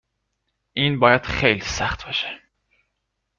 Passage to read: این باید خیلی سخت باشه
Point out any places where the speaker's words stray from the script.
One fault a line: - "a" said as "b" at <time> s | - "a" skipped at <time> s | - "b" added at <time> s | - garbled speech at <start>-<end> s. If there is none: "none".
none